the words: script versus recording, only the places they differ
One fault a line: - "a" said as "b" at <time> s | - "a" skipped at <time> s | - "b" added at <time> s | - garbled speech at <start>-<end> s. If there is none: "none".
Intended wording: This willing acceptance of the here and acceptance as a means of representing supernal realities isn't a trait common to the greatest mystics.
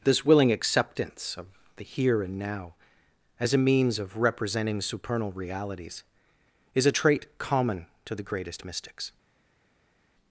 - "acceptance" said as "now" at 2.4 s
- "isn't" said as "is" at 6.7 s